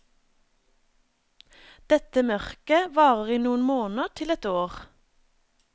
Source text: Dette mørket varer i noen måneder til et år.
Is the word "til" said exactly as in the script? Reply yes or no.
yes